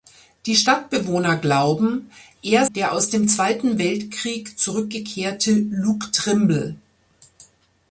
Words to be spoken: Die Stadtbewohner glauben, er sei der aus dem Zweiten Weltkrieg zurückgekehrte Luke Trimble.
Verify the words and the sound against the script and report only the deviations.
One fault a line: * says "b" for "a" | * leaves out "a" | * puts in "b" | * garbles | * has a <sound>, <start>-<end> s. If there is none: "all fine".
* leaves out "sei"